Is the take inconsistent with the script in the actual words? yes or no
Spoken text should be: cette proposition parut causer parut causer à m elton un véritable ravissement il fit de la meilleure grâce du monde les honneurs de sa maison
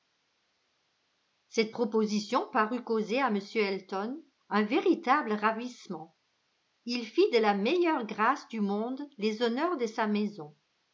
yes